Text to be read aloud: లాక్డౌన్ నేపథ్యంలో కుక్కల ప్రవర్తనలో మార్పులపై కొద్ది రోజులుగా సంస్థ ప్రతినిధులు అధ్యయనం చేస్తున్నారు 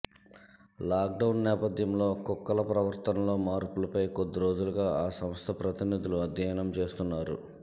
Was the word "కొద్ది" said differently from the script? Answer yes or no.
no